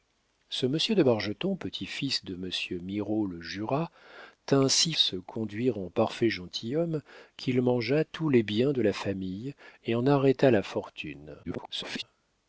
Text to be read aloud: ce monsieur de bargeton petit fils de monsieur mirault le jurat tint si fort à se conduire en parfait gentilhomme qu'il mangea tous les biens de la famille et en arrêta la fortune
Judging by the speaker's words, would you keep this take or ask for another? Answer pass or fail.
fail